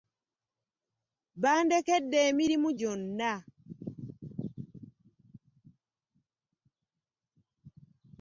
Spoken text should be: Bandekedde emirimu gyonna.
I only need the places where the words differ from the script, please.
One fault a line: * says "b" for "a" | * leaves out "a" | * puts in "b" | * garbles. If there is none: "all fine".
all fine